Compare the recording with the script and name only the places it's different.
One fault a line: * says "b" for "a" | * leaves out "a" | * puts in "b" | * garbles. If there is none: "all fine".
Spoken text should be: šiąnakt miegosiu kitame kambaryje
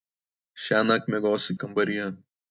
* leaves out "kitame"